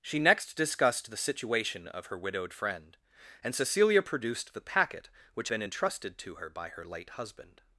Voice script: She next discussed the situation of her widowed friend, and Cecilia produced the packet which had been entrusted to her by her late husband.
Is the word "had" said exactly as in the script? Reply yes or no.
no